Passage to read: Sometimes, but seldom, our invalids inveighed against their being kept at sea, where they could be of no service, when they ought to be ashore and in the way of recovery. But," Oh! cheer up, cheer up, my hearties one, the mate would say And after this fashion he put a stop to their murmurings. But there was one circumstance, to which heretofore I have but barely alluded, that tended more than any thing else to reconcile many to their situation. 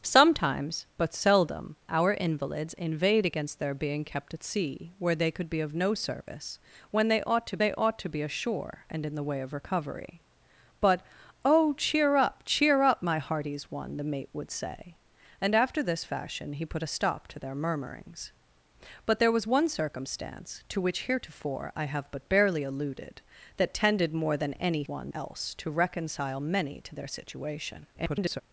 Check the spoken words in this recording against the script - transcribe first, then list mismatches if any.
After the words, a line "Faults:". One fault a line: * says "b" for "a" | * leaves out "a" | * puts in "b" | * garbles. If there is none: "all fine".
Sometimes, but seldom, our invalids inveighed against their being kept at sea, where they could be of no service, when they ought to they ought to be ashore and in the way of recovery. But," Oh! cheer up, cheer up, my hearties one, the mate would say And after this fashion he put a stop to their murmurings. But there was one circumstance, to which heretofore I have but barely alluded, that tended more than any one else to reconcile many to their situation. [garbled]
Faults:
* puts in "they ought to"
* says "one" for "thing"
* garbles